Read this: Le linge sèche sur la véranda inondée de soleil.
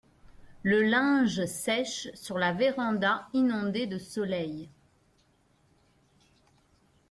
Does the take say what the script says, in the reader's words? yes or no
yes